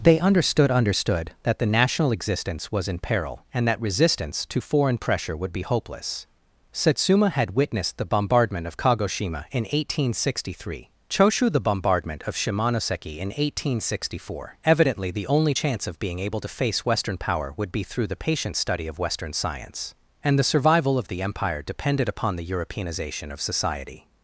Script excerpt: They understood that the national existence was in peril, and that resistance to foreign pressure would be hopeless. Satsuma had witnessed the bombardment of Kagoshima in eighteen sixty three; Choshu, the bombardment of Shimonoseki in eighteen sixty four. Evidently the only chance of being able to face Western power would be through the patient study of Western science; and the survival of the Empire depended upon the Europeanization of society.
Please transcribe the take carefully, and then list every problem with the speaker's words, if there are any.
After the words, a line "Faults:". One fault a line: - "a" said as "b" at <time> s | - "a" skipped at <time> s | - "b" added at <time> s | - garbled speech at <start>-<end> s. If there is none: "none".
They understood understood that the national existence was in peril, and that resistance to foreign pressure would be hopeless. Satsuma had witnessed the bombardment of Kagoshima in eighteen sixty three; Choshu, the bombardment of Shimonoseki in eighteen sixty four. Evidently the only chance of being able to face Western power would be through the patient study of Western science; and the survival of the Empire depended upon the Europeanization of society.
Faults:
- "understood" added at 0.7 s